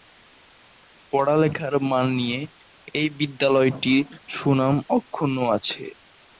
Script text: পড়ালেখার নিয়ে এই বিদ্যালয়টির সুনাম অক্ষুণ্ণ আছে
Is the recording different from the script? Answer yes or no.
yes